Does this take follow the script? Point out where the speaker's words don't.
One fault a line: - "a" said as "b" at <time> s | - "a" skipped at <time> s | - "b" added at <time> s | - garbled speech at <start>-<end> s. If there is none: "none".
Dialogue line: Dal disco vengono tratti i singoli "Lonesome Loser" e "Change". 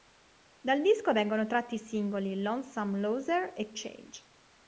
none